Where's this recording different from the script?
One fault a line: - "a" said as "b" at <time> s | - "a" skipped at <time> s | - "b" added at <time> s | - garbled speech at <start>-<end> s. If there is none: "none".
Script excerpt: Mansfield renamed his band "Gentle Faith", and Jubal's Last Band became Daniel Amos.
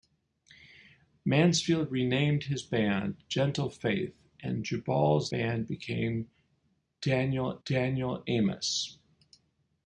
- "Last" skipped at 5.3 s
- "Daniel" added at 7.6 s